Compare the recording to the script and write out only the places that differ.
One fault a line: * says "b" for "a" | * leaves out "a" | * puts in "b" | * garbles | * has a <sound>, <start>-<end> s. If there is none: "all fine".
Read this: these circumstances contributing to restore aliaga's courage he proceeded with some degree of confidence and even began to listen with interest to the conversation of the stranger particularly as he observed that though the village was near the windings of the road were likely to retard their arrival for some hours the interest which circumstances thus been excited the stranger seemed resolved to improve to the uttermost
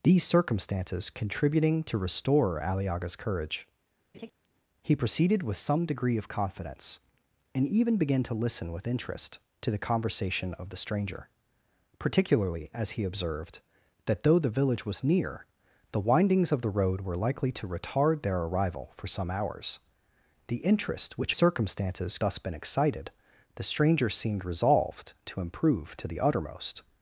* has a laugh, 4.1-4.3 s